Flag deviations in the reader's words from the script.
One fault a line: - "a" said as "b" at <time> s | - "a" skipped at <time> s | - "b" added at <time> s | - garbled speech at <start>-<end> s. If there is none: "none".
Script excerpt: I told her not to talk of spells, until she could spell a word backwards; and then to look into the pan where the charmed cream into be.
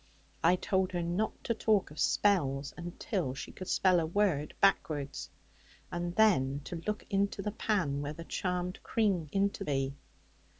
none